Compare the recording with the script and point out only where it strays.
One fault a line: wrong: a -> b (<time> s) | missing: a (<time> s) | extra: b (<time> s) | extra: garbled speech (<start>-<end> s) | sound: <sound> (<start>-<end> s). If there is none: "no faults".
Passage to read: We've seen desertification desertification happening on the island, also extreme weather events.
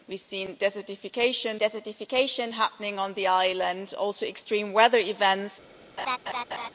sound: laugh (6.0-6.7 s)